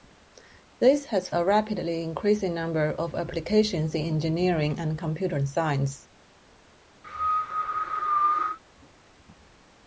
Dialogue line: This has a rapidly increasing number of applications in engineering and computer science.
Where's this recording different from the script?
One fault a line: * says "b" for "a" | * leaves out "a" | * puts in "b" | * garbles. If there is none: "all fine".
all fine